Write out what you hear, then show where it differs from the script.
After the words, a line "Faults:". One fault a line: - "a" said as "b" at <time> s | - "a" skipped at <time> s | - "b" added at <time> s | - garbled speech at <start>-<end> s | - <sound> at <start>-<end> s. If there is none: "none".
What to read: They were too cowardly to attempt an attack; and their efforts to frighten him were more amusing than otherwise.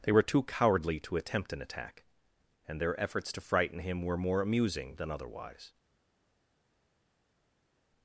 They were too cowardly to attempt an attack; and their efforts to frighten him were more amusing than otherwise.
Faults:
none